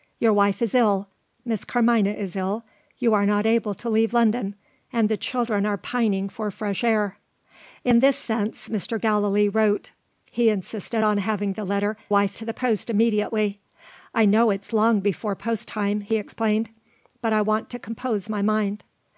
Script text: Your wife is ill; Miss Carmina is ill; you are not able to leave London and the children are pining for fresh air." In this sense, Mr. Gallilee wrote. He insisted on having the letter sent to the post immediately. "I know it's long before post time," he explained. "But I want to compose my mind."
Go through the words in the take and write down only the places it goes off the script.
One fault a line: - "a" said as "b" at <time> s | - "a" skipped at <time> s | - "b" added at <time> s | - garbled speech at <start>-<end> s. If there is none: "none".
- "sent" said as "wife" at 12.1 s